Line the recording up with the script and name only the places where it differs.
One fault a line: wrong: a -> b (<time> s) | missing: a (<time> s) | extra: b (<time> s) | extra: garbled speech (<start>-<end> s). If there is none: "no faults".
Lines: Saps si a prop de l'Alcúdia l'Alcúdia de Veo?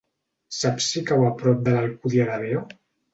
extra: cau (1.1 s)
missing: l'Alcúdia (2.3 s)